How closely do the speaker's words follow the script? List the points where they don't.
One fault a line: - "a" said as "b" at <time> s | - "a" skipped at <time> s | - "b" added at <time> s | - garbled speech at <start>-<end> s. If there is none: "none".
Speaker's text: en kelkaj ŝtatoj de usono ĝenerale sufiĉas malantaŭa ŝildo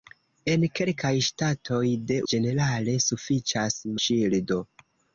- "usono" skipped at 2.2 s
- "malantaŭa" skipped at 3.8 s